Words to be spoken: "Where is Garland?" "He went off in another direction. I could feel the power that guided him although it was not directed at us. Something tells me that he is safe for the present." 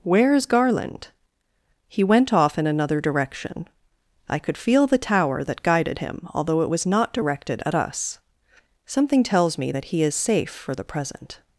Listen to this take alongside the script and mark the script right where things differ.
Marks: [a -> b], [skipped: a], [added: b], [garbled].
"Where is Garland?" "He went off in another direction. I could feel the [power -> tower] that guided him although it was not directed at us. Something tells me that he is safe for the present."